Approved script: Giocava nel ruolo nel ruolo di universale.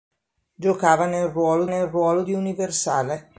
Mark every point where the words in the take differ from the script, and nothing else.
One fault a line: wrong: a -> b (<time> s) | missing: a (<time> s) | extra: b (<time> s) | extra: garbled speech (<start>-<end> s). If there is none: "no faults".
no faults